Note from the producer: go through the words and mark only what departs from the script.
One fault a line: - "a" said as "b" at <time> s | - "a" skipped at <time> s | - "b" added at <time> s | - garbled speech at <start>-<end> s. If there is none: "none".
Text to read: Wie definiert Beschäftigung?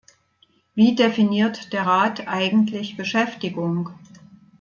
- "der Rat eigentlich" added at 1.7 s